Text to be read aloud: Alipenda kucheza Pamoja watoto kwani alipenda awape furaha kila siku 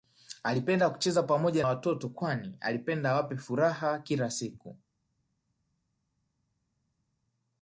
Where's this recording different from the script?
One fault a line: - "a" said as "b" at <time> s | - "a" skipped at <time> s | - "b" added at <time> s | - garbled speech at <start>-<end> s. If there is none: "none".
none